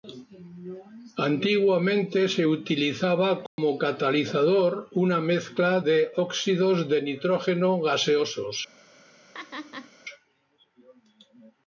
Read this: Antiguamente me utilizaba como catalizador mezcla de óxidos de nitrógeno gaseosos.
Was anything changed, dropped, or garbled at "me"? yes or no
yes